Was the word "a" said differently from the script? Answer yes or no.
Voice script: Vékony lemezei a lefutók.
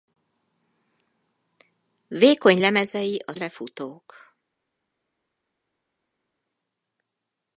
no